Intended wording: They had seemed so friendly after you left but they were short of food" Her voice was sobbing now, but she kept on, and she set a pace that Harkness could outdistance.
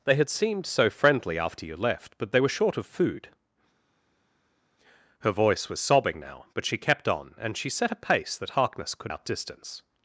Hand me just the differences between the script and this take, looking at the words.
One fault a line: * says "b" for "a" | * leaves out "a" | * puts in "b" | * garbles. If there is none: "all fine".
all fine